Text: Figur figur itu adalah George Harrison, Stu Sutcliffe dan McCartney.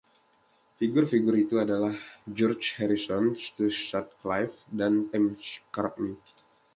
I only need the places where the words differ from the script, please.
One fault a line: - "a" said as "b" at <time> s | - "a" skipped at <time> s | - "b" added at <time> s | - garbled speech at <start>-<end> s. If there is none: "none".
none